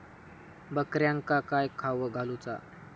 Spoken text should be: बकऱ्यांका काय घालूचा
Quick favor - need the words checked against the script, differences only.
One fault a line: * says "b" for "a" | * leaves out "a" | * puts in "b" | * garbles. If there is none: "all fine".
* puts in "खावक"